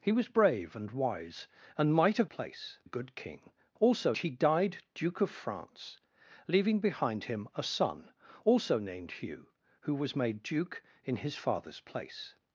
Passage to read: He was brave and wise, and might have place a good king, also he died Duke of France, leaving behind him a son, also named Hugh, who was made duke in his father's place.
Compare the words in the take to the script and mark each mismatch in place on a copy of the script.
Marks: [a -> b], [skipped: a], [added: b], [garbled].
He was brave and wise, and might have place a good king, also he died Duke of France, leaving behind him a son, also named Hugh, who was made duke in his father's place.